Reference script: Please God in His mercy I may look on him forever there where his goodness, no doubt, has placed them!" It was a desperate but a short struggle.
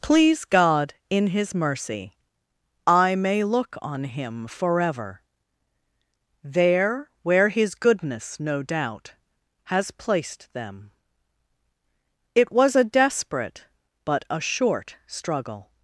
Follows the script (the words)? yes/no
yes